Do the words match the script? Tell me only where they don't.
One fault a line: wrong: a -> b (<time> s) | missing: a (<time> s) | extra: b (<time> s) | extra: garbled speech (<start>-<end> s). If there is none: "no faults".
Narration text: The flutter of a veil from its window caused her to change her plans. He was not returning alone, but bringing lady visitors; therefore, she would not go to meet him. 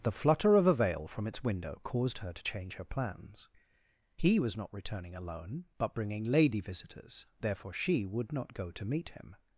no faults